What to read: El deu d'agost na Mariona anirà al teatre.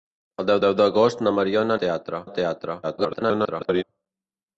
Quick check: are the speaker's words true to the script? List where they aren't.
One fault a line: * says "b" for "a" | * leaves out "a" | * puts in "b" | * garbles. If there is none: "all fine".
* puts in "deu"
* says "teatre" for "anirà"
* garbles